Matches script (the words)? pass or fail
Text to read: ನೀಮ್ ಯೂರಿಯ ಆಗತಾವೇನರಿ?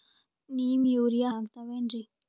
pass